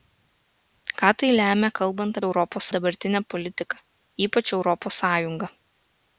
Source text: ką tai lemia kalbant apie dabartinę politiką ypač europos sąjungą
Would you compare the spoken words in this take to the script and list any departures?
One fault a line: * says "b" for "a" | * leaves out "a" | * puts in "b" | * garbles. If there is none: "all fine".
* says "europos" for "apie"